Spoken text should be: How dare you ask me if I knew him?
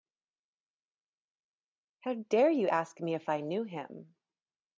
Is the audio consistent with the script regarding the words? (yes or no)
yes